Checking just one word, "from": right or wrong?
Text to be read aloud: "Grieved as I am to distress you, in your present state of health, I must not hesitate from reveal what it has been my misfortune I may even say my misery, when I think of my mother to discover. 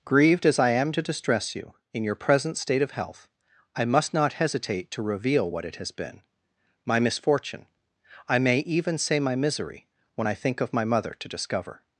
wrong